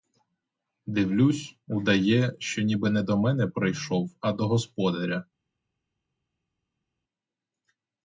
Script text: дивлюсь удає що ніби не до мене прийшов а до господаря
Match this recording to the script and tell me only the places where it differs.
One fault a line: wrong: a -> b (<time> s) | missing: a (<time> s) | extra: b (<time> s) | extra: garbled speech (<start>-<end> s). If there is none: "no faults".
no faults